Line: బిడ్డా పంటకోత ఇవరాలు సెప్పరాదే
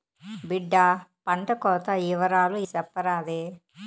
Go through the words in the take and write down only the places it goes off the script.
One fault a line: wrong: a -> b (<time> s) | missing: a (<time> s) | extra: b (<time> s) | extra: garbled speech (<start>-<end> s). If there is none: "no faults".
no faults